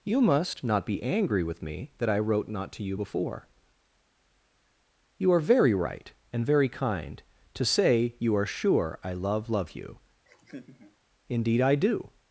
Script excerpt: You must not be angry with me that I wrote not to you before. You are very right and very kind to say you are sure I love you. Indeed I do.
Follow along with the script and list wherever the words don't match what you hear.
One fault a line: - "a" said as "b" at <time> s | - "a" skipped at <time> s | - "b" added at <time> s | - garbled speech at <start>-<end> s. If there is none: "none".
- "love" added at 9.5 s